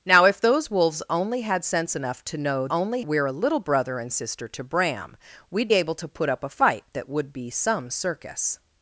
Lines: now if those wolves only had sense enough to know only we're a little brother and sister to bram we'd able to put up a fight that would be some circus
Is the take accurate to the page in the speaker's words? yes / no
yes